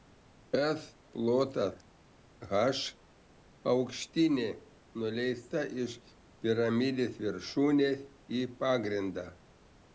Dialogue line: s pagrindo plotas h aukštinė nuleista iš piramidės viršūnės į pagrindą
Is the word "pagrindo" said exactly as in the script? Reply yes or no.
no